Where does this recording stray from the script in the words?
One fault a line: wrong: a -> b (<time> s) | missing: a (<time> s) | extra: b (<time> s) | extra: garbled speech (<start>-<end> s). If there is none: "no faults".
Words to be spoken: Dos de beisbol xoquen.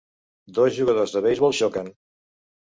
extra: jugadors (0.8 s)